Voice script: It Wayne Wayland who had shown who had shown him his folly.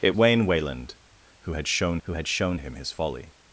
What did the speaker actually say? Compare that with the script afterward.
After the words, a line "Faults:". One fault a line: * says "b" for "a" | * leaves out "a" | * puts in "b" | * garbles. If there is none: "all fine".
It Wayne Wayland who had shown who had shown him his folly.
Faults:
all fine